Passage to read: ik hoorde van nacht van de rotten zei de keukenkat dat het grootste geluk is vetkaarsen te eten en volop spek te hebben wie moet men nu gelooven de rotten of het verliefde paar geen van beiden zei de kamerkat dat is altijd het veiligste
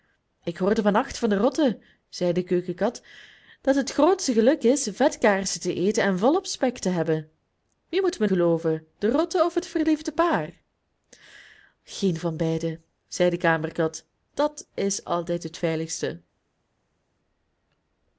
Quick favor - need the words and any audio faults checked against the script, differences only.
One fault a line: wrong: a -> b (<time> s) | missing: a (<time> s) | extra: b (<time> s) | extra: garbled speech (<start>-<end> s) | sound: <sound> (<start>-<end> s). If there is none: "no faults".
missing: nu (8.3 s)